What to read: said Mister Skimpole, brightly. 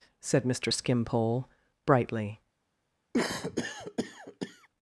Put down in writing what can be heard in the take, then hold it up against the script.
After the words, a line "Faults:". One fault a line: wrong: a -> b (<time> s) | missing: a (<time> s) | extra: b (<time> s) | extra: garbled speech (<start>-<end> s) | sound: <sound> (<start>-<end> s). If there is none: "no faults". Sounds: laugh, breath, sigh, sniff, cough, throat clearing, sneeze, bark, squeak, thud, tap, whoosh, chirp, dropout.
said Mister Skimpole, brightly.
Faults:
sound: cough (3.1-4.7 s)